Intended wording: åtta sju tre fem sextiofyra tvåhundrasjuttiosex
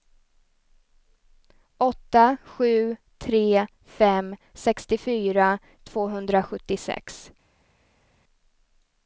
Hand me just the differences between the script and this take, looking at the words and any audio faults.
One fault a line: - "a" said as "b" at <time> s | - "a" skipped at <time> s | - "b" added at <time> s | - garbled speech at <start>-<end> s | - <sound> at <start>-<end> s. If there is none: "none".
none